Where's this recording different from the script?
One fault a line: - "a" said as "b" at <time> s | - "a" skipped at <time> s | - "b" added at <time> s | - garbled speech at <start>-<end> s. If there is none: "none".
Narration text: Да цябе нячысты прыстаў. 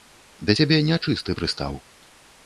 none